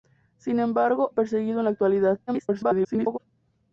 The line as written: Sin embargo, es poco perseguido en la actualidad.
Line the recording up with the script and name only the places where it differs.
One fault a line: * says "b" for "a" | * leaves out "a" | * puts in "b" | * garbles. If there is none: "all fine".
* leaves out "es poco"
* garbles